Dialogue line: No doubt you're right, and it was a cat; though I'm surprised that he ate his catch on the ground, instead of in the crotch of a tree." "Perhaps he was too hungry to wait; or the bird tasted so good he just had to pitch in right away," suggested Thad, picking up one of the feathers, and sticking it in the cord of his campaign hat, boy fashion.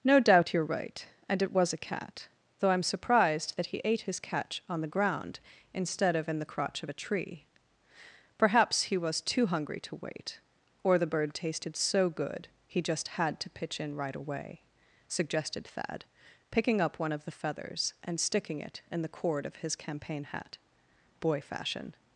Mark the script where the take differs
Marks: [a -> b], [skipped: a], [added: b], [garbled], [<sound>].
No doubt you're right, and it was a cat; though I'm surprised that he ate his catch on the ground, instead of in the crotch of a tree." "Perhaps he was too hungry to wait; or the bird tasted so good he just had to pitch in right away," suggested Thad, picking up one of the feathers, and sticking it in the cord of his campaign hat, boy fashion.